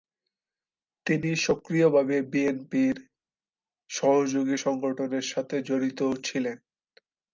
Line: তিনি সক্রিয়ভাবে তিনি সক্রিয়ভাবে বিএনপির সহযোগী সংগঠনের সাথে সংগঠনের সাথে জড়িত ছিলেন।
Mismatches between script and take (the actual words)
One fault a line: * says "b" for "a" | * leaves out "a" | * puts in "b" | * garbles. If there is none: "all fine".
* leaves out "তিনি সক্রিয়ভাবে"
* leaves out "সংগঠনের সাথে"